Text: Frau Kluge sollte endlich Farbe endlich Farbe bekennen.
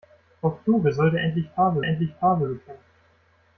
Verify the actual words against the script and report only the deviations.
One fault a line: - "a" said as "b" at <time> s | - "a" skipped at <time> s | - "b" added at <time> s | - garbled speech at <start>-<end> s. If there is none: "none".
none